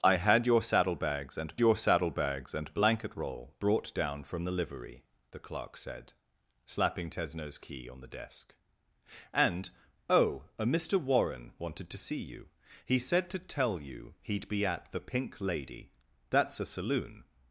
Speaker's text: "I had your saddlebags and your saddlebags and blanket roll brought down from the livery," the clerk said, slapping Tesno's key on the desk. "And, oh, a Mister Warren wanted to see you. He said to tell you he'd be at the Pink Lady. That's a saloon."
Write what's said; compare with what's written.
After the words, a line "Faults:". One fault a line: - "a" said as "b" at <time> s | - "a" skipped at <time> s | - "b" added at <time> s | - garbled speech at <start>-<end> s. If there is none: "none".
"I had your saddlebags and your saddlebags and blanket roll brought down from the livery," the clerk said, slapping Tesno's key on the desk. "And, oh, a Mister Warren wanted to see you. He said to tell you he'd be at the Pink Lady. That's a saloon."
Faults:
none